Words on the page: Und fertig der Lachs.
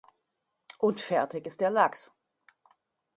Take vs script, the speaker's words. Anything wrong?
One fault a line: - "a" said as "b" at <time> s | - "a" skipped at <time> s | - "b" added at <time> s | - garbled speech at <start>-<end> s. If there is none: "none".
- "ist" added at 1.4 s